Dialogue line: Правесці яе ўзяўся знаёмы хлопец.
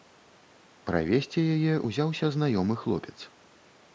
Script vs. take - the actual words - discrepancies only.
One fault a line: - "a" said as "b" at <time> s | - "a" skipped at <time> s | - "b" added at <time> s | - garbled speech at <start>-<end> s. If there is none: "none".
none